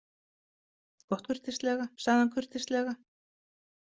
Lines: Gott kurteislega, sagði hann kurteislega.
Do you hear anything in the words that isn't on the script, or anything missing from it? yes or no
no